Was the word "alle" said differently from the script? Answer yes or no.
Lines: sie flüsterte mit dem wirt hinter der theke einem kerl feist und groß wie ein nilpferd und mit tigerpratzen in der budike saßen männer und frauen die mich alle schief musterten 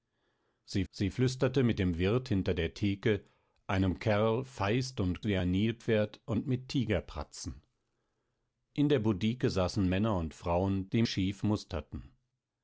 yes